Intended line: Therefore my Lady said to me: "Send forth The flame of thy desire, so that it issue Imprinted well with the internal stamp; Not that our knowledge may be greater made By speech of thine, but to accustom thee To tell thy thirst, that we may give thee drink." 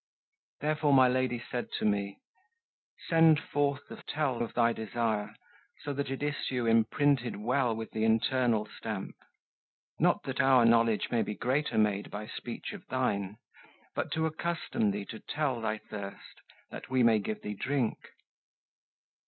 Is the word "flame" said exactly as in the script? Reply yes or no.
no